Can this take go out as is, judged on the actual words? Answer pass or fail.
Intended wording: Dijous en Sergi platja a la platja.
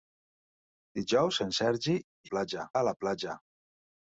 pass